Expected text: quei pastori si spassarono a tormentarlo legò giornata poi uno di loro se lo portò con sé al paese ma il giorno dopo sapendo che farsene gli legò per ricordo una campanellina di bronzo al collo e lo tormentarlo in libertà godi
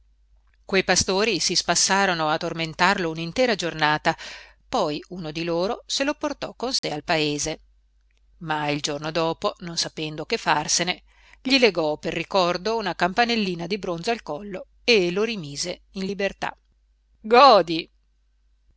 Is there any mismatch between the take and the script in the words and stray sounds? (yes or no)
yes